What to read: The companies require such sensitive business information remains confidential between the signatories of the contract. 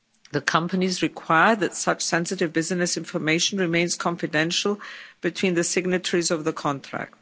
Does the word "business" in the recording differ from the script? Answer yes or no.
no